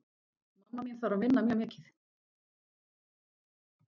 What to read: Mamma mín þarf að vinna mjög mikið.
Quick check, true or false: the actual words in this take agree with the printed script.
true